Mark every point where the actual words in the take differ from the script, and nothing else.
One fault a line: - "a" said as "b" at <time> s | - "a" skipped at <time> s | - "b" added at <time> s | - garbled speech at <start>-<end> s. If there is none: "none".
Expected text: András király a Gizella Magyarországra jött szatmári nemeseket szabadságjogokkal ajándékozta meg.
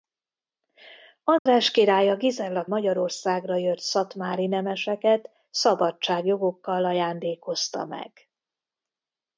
none